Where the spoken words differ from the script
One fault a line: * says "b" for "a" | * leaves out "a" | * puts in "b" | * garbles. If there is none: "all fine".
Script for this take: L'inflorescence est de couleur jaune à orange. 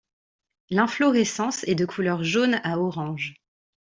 all fine